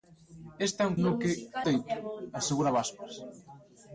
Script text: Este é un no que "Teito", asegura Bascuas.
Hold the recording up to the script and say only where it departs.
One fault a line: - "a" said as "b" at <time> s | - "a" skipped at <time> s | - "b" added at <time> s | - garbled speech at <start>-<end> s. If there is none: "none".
none